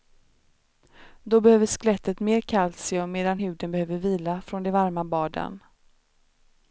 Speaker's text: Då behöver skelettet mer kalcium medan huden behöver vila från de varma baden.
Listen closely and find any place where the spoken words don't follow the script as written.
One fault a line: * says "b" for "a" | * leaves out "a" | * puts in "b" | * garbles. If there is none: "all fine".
all fine